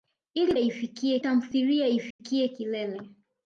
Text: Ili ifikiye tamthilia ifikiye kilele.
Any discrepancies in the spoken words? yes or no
no